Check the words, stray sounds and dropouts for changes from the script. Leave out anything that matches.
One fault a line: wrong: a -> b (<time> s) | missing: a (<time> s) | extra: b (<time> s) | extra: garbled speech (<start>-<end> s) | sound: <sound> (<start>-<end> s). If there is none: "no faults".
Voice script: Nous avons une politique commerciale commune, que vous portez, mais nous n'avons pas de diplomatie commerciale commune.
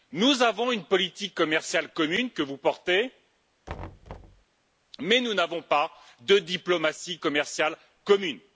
sound: thud (3.7-4.4 s)